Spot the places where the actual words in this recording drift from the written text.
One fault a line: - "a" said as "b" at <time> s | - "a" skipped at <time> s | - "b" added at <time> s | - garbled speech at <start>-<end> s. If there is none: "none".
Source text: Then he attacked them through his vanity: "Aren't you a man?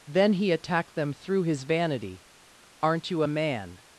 none